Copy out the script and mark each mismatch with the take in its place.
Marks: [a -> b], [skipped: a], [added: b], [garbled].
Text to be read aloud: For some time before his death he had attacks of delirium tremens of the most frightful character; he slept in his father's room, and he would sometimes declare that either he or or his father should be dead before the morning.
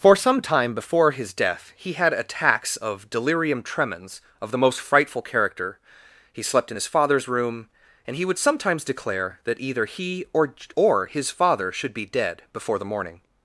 For some time before his death he had attacks of delirium tremens of the most frightful character; he slept in his father's room, and he would sometimes declare that either he or or his father should be dead before the morning.